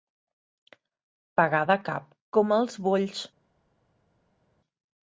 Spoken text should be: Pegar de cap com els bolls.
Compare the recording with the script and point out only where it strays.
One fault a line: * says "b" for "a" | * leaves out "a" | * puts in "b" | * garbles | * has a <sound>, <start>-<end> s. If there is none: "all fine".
all fine